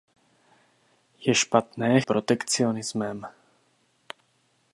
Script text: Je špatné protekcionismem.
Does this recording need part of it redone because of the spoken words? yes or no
no